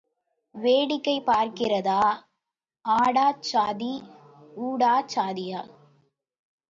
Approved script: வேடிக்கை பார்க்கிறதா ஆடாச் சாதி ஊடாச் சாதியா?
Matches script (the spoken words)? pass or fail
pass